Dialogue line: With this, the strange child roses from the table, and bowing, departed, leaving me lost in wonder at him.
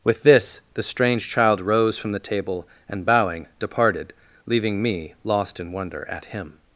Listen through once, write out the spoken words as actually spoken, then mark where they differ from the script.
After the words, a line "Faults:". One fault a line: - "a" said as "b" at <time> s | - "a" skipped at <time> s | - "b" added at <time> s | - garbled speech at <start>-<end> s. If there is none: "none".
With this, the strange child rose from the table, and bowing, departed, leaving me lost in wonder at him.
Faults:
- "roses" said as "rose" at 1.6 s